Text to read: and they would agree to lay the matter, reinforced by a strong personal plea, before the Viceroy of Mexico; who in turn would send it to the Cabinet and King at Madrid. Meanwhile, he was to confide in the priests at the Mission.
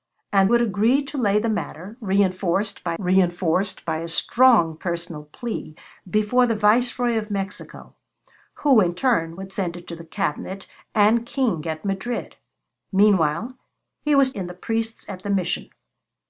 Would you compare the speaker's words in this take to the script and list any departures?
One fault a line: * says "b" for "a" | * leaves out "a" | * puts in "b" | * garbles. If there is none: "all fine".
* leaves out "they"
* puts in "reinforced by"
* leaves out "to confide"